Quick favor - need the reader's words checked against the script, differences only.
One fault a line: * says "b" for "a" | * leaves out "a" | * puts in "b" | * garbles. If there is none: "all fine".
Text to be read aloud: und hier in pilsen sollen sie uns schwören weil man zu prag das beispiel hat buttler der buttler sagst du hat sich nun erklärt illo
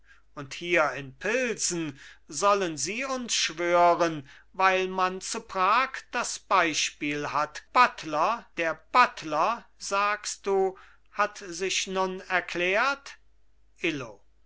all fine